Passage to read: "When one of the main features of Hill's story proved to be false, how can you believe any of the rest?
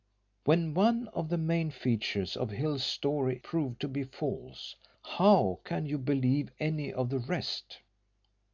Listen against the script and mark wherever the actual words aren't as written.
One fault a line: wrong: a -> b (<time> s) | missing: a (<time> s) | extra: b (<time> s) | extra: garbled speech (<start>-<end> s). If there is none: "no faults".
no faults